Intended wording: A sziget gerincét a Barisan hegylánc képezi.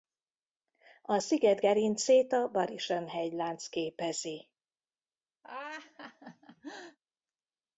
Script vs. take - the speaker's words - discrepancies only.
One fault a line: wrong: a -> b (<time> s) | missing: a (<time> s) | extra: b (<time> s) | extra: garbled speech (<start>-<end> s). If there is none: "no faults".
no faults